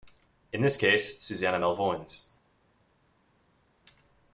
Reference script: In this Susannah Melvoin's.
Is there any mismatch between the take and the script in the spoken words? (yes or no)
yes